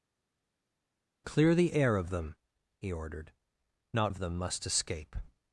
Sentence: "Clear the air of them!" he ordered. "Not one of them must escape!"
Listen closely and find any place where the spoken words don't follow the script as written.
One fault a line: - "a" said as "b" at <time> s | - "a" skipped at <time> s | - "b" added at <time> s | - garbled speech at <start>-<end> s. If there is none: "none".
- "one" skipped at 4.1 s